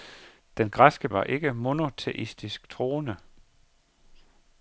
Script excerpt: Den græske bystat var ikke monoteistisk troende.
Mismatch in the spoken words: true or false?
true